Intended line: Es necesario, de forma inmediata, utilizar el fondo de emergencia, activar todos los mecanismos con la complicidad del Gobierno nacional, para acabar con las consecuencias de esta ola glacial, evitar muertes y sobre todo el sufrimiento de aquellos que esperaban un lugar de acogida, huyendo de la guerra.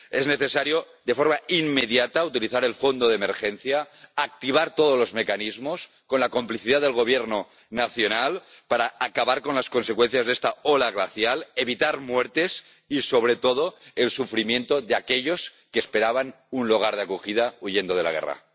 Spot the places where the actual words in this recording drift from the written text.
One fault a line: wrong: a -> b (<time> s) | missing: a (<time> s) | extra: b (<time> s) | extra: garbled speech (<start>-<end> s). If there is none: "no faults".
no faults